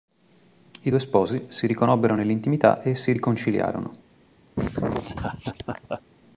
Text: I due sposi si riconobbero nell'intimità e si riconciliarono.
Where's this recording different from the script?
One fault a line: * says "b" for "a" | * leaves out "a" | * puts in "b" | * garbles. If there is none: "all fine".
all fine